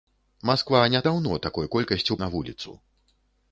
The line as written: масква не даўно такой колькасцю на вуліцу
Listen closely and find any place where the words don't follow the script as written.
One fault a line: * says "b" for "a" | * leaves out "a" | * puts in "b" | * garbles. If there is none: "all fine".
all fine